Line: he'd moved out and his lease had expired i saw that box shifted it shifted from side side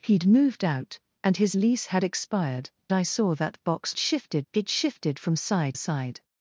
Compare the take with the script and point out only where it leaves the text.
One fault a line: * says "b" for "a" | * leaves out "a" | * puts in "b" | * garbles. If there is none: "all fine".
all fine